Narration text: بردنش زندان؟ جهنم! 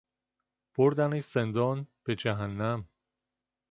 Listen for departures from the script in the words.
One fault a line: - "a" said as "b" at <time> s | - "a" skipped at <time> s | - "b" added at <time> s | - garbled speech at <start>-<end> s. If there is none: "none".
- "به" added at 2.0 s